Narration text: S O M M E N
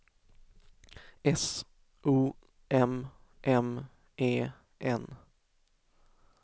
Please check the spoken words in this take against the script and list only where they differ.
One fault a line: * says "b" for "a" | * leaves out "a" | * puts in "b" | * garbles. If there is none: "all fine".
all fine